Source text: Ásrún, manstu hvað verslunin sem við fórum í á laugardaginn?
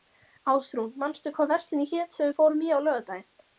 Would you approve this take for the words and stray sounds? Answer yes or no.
no